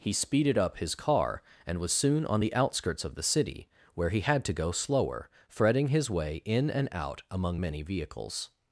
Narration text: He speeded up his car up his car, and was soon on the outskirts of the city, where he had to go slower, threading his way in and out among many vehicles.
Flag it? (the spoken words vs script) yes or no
yes